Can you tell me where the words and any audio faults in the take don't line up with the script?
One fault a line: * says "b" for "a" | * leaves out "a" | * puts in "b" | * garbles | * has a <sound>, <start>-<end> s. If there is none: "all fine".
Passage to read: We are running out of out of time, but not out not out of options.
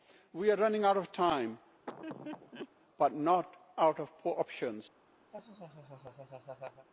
* leaves out "out of"
* has a laugh, 1.9-2.7 s
* leaves out "not out"
* has a laugh, 5.3-6.9 s